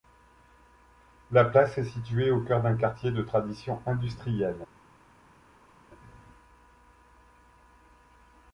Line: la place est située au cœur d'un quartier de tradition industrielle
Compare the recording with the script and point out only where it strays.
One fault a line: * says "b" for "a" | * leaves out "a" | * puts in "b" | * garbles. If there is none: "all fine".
all fine